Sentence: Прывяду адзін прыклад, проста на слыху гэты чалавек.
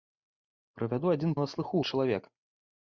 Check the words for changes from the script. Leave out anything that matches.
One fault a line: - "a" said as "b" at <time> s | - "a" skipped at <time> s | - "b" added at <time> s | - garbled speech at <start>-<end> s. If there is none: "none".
- "прыклад проста" skipped at 1.4 s
- "гэты" skipped at 1.8 s